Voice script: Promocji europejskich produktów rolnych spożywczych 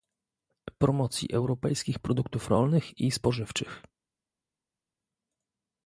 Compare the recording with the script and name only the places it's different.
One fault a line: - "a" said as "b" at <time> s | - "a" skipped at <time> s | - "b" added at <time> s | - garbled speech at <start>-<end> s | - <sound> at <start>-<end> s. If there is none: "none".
- "i" added at 3.0 s